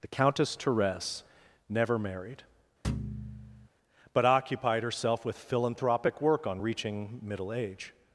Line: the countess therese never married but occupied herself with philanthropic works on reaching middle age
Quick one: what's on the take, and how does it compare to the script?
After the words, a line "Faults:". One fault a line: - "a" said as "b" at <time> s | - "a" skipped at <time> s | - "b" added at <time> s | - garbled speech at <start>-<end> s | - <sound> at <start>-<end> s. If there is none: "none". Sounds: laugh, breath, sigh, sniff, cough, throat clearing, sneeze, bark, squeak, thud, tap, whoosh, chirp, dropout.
the countess therese never married but occupied herself with philanthropic work on reaching middle age
Faults:
- thud at 2.8-3.7 s
- "works" said as "work" at 6.2 s